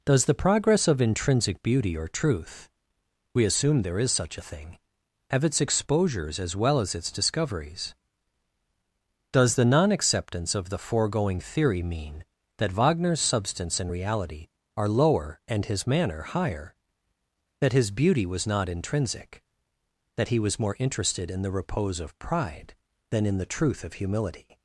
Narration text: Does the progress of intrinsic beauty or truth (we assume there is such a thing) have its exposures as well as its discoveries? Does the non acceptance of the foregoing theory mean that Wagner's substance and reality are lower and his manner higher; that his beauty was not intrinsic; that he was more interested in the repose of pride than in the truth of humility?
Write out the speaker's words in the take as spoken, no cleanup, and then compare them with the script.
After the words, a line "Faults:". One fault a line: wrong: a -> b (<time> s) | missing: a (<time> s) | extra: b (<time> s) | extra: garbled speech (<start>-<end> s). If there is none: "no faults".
Does the progress of intrinsic beauty or truth (we assume there is such a thing) have its exposures as well as its discoveries? Does the non acceptance of the foregoing theory mean that Wagner's substance and reality are lower and his manner higher; that his beauty was not intrinsic; that he was more interested in the repose of pride than in the truth of humility?
Faults:
no faults